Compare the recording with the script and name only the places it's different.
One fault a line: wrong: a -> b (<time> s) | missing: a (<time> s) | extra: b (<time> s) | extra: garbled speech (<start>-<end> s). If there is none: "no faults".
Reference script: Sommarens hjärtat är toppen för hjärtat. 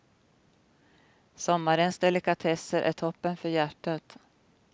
wrong: hjärtat -> delikatesser (2.0 s)